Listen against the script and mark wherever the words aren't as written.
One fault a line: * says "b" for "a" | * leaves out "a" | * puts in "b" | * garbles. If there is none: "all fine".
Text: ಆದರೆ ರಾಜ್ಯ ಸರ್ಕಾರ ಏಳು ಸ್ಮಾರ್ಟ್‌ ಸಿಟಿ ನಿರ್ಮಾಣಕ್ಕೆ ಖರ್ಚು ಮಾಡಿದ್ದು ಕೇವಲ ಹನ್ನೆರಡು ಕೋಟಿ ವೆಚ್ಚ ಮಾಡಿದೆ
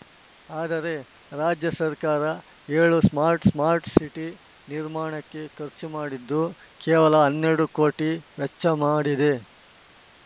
* puts in "ಸ್ಮಾರ್ಟ್"